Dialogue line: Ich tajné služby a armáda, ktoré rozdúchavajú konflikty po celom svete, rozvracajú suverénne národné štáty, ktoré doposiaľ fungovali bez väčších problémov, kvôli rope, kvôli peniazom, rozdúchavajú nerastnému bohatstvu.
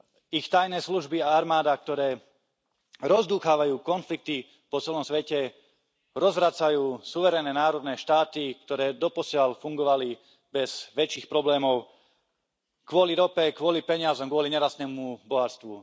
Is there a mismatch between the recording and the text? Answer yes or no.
yes